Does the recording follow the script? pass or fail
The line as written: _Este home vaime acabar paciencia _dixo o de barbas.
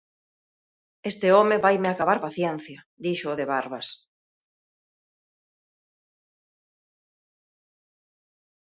pass